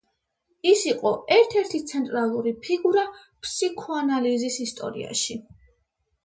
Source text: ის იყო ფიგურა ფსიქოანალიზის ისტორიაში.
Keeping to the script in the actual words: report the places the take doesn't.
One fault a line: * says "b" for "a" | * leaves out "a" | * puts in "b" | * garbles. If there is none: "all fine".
* puts in "ერთ ერთი ცენტრალური"